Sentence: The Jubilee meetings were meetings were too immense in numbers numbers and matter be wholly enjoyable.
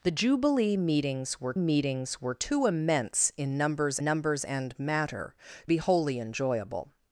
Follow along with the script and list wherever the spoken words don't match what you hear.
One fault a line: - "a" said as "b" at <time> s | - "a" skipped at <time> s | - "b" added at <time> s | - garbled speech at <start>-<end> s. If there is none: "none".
none